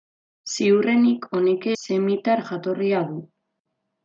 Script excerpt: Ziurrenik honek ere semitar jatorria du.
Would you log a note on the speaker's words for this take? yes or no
yes